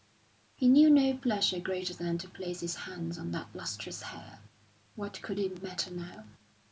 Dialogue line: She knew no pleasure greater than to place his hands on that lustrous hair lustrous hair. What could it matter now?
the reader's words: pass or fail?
fail